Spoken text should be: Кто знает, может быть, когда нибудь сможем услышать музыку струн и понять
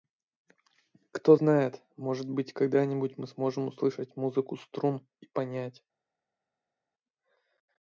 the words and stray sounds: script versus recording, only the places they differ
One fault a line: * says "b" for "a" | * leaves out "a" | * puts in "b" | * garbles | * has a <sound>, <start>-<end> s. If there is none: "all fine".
* puts in "мы"